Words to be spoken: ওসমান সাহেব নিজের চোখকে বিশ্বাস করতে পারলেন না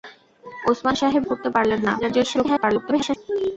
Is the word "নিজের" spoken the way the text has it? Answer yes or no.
no